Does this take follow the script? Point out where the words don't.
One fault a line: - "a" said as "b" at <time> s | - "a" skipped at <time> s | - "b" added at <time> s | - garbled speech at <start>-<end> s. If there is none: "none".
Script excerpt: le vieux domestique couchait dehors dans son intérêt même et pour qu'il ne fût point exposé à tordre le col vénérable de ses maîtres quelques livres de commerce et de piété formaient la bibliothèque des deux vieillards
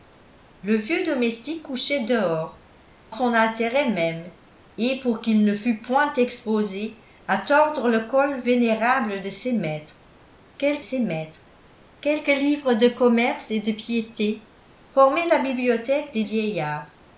- "dans" skipped at 2.6 s
- "ses maîtres quelques" added at 10.8 s
- "deux" skipped at 16.2 s